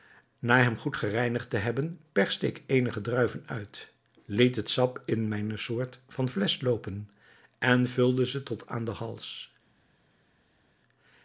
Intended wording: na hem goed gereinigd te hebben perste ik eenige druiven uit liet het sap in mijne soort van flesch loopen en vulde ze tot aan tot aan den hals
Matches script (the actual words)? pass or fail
fail